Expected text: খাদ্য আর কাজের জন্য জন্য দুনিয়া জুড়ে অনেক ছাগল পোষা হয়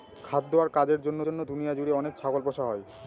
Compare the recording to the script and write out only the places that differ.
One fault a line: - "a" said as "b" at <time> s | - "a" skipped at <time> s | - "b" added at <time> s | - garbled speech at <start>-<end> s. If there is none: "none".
none